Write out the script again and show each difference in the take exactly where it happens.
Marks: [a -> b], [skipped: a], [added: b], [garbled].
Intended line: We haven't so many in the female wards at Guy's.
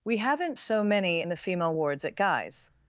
We haven't so many in the female wards at Guy's.